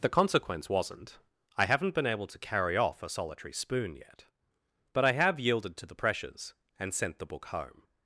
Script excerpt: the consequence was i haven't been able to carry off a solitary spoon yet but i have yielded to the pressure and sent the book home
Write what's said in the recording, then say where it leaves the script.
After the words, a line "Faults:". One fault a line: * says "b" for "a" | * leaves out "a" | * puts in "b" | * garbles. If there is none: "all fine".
the consequence wasn't i haven't been able to carry off a solitary spoon yet but i have yielded to the pressures and sent the book home
Faults:
* says "wasn't" for "was"
* says "pressures" for "pressure"